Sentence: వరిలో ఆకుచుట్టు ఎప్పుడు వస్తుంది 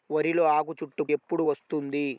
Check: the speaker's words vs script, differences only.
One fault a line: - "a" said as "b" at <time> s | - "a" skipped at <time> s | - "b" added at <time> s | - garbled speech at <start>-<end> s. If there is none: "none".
none